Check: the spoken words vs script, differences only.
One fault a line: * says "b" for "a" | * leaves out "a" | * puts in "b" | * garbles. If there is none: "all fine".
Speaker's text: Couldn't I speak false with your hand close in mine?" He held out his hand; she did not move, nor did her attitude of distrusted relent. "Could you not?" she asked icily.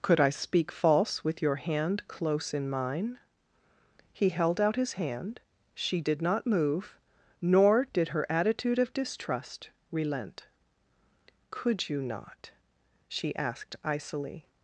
* says "Could" for "Couldn't"
* says "distrust" for "distrusted"